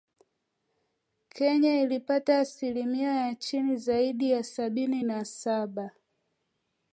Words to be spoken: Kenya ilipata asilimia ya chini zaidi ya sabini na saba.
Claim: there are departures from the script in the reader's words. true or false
false